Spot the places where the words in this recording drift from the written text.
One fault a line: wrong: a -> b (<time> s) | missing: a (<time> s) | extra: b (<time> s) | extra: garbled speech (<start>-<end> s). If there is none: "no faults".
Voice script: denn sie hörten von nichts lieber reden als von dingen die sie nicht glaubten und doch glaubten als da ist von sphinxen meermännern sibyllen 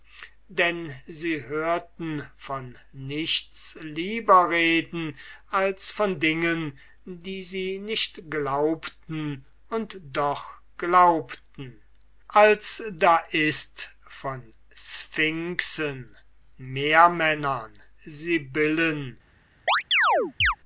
no faults